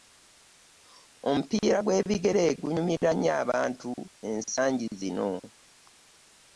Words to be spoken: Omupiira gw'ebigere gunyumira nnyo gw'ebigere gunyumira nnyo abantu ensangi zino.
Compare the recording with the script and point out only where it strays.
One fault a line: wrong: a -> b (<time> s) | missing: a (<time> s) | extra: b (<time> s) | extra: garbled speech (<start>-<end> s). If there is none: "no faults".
missing: gw'ebigere gunyumira nnyo (3.3 s)